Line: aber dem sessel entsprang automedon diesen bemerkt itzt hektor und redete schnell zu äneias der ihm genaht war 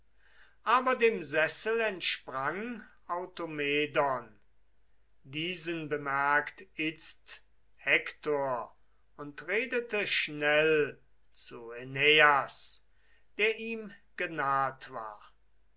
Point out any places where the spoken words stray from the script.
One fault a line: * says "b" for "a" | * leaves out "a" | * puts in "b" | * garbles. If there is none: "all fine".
all fine